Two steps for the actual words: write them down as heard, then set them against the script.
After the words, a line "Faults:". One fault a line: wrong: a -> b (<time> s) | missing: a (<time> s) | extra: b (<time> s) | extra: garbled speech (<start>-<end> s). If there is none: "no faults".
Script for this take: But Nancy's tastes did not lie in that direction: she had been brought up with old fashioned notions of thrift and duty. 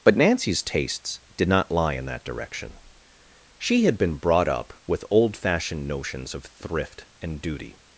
But Nancy's tastes did not lie in that direction: she had been brought up with old fashioned notions of thrift and duty.
Faults:
no faults